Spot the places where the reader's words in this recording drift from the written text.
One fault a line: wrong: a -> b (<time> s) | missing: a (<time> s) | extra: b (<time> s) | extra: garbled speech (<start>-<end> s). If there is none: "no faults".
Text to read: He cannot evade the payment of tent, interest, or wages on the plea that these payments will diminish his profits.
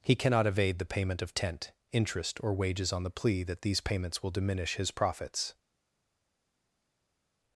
no faults